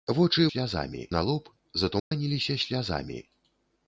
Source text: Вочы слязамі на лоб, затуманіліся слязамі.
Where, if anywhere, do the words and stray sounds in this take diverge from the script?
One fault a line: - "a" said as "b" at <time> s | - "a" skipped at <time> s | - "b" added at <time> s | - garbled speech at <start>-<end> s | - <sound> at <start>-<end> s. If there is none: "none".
- dropout at 2.0-2.1 s